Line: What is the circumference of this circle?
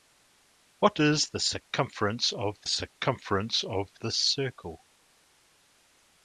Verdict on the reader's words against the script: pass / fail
fail